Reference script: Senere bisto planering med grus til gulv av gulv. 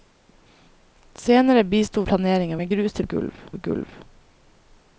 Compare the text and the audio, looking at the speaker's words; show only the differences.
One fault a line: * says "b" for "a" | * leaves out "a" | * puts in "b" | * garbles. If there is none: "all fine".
all fine